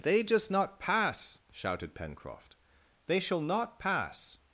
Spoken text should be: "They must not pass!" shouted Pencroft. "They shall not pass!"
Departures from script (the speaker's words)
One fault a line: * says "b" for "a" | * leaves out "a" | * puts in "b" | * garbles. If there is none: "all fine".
* says "just" for "must"